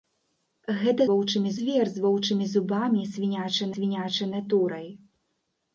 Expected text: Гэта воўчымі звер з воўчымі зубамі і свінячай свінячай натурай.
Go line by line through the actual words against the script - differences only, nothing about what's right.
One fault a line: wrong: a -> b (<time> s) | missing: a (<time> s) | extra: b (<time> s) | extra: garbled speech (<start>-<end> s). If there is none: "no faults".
no faults